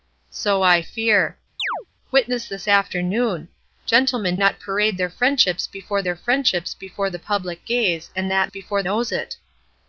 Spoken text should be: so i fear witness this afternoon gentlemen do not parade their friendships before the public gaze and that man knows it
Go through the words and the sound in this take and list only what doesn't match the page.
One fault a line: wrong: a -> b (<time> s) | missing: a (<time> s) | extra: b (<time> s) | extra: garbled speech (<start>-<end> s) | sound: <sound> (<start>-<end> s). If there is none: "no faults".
sound: chirp (1.6-1.9 s)
missing: do (4.4 s)
extra: their friendships before (6.0 s)
wrong: man -> before (8.5 s)